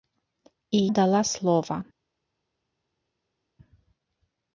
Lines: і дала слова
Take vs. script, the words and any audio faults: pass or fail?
pass